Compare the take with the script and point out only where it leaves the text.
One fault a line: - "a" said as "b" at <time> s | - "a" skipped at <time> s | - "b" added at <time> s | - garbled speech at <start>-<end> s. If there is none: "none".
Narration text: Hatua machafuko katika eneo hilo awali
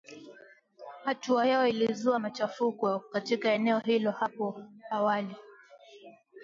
- "yao ilizua" added at 1.4 s
- "hapo" added at 4.1 s